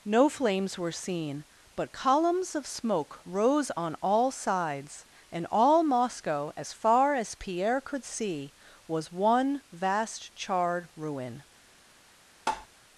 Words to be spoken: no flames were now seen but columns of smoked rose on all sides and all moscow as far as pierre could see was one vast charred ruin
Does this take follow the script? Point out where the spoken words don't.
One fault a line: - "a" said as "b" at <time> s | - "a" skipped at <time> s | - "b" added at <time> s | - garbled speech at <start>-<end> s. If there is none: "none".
- "now" skipped at 0.9 s
- "smoked" said as "smoke" at 2.6 s